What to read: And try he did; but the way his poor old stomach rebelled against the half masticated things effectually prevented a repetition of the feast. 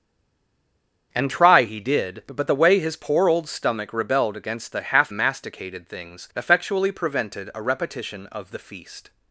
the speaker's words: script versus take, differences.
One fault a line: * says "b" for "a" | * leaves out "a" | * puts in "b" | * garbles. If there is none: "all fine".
all fine